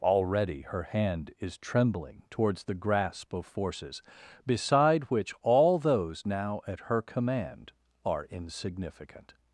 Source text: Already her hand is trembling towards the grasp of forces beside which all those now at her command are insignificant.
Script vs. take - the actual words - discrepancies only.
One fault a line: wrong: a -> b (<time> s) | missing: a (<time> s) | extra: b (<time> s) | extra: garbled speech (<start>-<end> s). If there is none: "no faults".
no faults